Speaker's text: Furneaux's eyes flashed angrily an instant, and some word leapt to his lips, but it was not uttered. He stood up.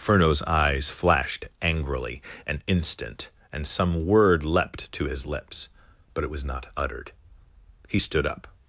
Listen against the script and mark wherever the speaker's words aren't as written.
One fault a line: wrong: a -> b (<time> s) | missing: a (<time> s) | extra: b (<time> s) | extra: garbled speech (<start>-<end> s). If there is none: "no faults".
no faults